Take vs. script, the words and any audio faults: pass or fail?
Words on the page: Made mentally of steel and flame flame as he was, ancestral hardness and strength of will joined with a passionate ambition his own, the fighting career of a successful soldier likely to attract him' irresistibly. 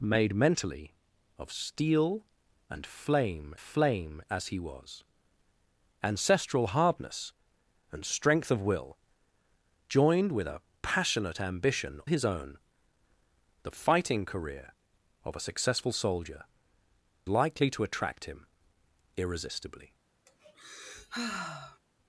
fail